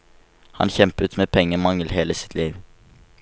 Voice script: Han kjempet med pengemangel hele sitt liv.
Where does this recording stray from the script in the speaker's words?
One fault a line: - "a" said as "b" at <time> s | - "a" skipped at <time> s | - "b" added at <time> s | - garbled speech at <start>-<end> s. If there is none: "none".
none